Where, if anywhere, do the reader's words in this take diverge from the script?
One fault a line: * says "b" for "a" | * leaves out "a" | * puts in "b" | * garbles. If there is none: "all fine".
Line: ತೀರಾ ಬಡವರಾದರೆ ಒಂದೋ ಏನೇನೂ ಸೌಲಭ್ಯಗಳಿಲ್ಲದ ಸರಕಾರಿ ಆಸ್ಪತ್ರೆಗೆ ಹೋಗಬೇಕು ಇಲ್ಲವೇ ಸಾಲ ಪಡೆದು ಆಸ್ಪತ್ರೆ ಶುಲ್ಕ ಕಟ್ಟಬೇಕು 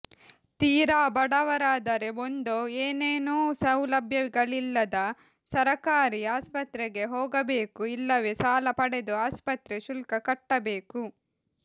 all fine